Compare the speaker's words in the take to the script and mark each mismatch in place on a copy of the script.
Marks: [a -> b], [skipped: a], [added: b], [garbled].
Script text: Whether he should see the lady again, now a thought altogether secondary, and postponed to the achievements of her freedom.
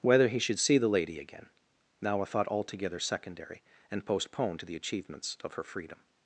Whether he should see the lady again, now a thought altogether secondary, and postponed to the achievements of her freedom.